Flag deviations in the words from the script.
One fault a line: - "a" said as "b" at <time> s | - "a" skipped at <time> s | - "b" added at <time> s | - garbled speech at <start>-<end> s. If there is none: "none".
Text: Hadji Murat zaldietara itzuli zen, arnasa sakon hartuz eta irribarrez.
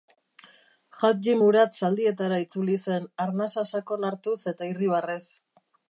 none